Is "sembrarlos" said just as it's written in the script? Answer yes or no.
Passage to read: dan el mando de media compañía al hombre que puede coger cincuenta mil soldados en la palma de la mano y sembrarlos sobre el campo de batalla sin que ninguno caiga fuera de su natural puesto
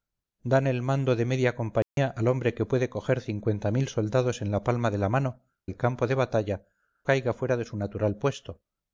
no